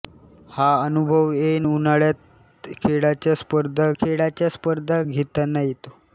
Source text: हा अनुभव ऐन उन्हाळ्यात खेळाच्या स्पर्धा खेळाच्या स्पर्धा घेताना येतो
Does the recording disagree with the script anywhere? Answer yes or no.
no